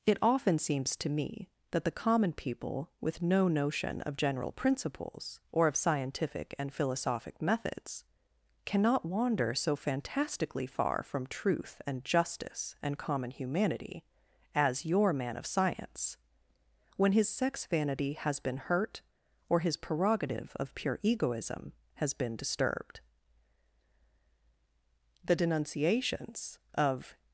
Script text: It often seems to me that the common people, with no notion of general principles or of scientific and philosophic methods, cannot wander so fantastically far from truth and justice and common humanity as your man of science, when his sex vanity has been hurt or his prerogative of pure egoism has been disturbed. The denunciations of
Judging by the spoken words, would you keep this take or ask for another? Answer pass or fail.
pass